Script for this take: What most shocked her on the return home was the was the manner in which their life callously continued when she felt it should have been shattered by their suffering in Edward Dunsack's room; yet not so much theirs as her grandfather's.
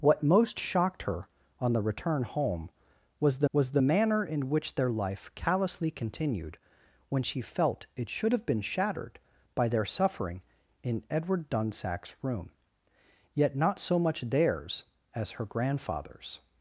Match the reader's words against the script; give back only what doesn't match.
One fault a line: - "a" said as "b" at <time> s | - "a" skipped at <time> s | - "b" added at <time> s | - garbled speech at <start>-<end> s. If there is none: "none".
none